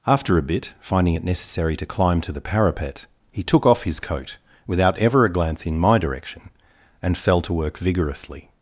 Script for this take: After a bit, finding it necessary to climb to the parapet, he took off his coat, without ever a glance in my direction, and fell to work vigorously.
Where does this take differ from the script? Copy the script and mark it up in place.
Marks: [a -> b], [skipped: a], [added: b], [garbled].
After a bit, finding it necessary to climb to the parapet, he took off his coat, without ever a glance in my direction, and fell to work vigorously.